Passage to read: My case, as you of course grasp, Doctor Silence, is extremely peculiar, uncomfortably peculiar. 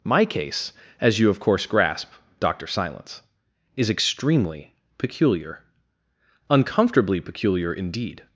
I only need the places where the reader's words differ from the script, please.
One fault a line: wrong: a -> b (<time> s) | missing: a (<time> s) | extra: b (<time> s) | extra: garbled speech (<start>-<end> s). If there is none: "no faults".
extra: Indeed (7.7 s)